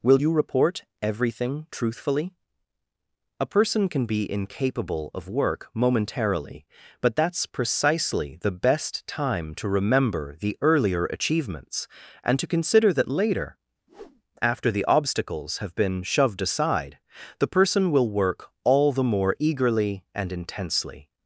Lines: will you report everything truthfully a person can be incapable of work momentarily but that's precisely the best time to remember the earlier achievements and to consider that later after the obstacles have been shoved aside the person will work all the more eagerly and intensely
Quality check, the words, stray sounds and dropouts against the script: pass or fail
fail